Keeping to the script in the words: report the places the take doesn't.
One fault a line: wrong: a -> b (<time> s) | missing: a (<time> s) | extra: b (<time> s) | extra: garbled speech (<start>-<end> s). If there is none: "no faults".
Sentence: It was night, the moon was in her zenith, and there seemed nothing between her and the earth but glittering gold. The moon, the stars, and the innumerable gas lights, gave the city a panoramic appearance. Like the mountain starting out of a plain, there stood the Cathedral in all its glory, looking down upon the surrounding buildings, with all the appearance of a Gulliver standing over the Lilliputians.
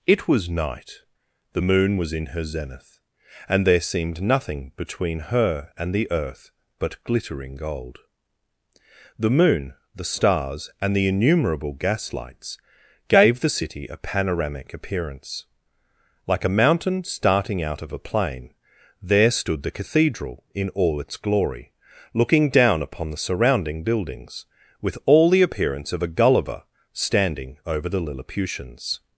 wrong: the -> a (16.4 s)